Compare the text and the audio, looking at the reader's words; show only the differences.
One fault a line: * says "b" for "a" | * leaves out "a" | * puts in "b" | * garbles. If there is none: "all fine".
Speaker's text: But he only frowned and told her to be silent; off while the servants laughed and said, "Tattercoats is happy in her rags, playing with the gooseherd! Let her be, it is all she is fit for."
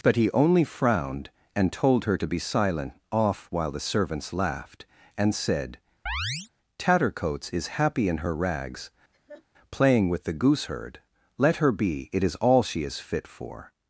all fine